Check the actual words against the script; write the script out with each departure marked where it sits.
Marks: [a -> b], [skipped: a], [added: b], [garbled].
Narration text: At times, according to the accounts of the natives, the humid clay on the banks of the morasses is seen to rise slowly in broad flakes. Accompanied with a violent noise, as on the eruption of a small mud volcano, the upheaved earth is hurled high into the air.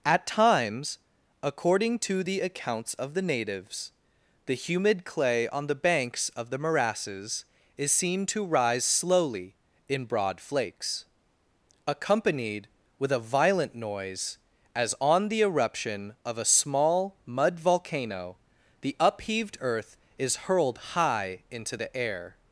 At times, according to the accounts of the natives, the humid clay on the banks of the morasses is seen to rise slowly in broad flakes. Accompanied with a violent noise, as on the eruption of a small mud volcano, the upheaved earth is hurled high into the air.